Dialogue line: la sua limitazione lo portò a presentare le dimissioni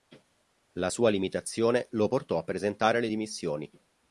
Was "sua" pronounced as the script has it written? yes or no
yes